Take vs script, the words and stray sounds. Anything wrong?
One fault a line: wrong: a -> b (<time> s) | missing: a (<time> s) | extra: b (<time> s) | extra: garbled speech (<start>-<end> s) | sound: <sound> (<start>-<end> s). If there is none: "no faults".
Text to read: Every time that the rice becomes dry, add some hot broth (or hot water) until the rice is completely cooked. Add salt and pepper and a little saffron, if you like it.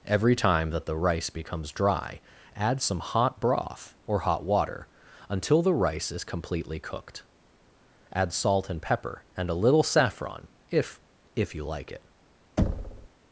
extra: if (11.3 s)
sound: thud (12.6-13.1 s)